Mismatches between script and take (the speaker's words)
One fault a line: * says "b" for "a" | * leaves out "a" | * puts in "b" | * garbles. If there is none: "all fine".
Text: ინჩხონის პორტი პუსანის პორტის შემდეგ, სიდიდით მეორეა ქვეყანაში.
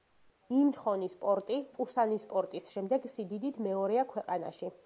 all fine